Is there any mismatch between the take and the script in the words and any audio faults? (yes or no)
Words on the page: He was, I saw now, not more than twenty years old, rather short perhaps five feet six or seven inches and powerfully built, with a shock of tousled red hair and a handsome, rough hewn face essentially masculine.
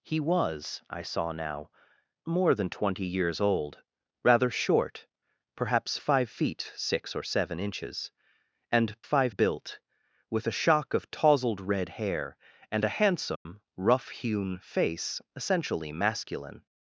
yes